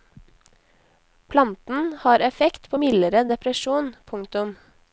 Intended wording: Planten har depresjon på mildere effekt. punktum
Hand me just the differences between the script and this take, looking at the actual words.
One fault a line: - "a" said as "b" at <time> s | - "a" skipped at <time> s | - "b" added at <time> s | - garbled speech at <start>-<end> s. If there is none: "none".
- "depresjon" said as "effekt" at 2.2 s
- "effekt" said as "depresjon" at 3.3 s